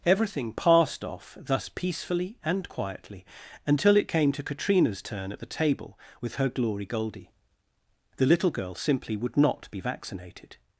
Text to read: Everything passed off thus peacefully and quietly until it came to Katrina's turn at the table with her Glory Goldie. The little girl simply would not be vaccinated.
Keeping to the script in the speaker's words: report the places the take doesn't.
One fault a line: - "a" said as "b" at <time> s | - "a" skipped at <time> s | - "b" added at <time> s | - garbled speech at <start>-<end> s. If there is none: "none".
none